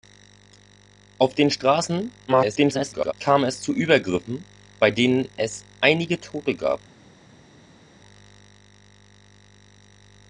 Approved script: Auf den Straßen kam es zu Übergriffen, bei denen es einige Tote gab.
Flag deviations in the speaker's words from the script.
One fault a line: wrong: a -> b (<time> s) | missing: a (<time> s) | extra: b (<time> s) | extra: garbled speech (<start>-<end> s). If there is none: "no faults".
extra: garbled speech (2.3-3.1 s)